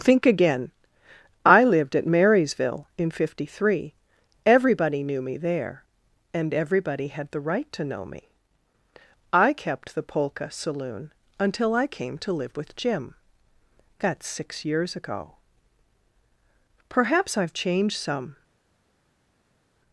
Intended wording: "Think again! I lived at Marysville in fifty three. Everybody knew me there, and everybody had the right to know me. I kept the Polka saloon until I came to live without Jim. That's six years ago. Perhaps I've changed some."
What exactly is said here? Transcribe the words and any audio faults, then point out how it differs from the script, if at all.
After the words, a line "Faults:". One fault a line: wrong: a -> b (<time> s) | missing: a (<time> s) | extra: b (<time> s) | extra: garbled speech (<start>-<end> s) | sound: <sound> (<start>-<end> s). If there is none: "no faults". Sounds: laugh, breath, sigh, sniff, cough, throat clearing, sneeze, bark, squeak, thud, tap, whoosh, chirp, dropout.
"Think again! I lived at Marysville in fifty three. Everybody knew me there, and everybody had the right to know me. I kept the Polka saloon until I came to live with Jim. That's six years ago. Perhaps I've changed some."
Faults:
wrong: without -> with (12.6 s)